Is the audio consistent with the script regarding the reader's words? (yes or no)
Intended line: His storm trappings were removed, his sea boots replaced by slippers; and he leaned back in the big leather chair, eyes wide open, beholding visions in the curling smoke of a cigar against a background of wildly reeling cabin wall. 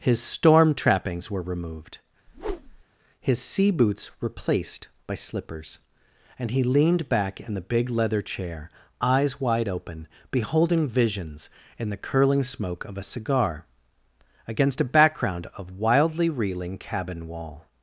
yes